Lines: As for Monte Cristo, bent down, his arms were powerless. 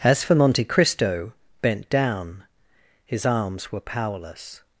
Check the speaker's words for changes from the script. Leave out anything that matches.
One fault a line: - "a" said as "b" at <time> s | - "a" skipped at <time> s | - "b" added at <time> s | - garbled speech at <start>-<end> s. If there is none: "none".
none